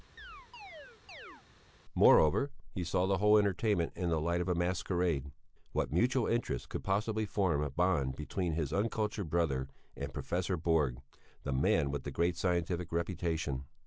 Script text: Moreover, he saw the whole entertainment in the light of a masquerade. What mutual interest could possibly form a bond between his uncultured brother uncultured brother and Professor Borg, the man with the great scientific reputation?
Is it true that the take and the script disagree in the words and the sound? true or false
true